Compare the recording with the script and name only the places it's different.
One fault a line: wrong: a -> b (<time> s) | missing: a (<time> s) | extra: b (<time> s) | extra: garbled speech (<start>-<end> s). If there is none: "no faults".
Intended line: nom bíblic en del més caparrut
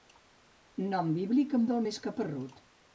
no faults